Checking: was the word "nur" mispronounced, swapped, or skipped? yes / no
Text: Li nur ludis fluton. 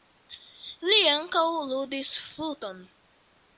yes